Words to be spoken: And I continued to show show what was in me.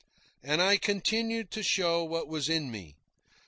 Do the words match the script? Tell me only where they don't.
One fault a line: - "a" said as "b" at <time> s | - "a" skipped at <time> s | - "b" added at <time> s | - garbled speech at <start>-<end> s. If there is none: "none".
- "show" skipped at 2.0 s